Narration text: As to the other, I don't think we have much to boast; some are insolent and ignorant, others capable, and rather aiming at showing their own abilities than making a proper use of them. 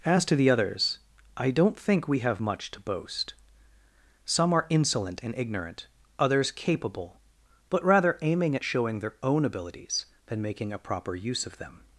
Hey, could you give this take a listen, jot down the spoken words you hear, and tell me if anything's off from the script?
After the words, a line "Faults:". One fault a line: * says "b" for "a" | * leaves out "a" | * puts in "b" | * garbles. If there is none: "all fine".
As to the others, I don't think we have much to boast; some are insolent and ignorant, others capable, but rather aiming at showing their own abilities than making a proper use of them.
Faults:
* says "others" for "other"
* says "but" for "and"